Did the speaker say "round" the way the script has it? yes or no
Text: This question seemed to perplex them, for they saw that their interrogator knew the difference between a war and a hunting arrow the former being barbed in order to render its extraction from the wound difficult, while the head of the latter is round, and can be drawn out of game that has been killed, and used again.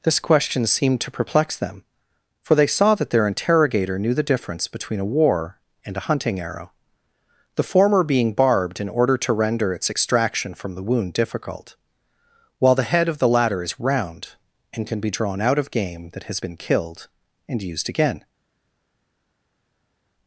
yes